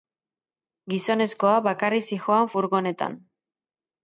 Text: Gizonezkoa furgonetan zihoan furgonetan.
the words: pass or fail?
fail